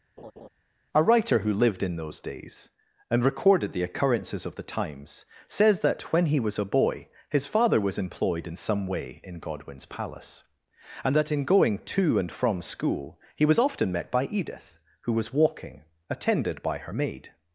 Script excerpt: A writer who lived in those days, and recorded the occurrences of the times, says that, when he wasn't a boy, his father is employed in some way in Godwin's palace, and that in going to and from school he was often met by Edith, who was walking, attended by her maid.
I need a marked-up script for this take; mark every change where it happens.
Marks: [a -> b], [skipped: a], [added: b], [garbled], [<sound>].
[laugh] A writer who lived in those days, and recorded the occurrences of the times, says that, when he [wasn't -> was] a boy, his father [is -> was] employed in some way in Godwin's palace, and that in going to and from school he was often met by Edith, who was walking, attended by her maid.